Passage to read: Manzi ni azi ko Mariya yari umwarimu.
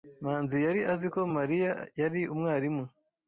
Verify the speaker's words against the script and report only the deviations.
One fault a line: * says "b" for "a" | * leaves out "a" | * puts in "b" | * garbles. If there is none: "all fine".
* says "yari" for "ni"